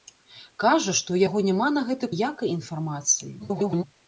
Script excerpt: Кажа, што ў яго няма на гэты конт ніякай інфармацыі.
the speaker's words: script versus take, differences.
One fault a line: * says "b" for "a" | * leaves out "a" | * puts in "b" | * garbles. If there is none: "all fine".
* leaves out "конт"
* garbles